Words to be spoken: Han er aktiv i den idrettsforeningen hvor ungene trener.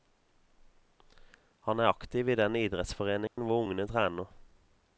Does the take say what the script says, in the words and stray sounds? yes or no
no